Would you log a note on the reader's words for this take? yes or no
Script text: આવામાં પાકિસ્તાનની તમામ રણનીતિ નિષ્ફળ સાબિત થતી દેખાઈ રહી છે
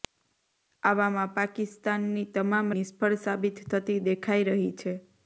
yes